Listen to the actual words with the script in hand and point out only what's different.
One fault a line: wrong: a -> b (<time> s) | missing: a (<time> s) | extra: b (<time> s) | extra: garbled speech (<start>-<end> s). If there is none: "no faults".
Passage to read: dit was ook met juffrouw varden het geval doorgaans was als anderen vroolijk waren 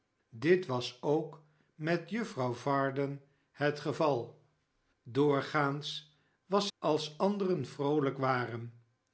no faults